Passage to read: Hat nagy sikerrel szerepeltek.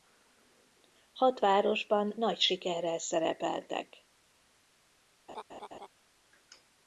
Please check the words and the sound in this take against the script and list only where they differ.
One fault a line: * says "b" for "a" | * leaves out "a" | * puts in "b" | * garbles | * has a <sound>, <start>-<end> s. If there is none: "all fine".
* puts in "városban"
* has a laugh, 5.3-5.9 s